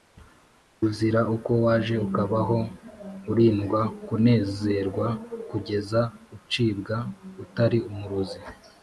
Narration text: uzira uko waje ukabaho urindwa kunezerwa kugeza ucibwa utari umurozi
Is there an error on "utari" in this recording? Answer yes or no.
no